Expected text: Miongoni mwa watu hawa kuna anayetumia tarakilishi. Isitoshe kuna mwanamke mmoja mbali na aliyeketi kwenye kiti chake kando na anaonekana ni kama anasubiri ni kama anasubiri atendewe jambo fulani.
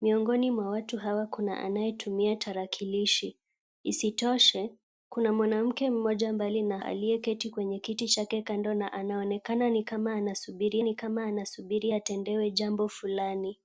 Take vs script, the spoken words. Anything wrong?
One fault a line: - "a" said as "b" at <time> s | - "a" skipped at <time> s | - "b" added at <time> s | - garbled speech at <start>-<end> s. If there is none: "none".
none